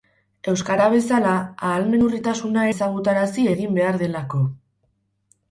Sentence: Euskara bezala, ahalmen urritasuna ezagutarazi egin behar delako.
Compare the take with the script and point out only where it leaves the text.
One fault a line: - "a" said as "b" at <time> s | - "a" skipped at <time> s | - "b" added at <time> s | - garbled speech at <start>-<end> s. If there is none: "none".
none